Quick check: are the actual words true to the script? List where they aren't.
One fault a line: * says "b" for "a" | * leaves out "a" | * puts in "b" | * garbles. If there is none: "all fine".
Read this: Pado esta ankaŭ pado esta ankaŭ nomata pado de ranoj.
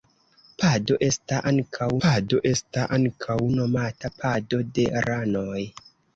all fine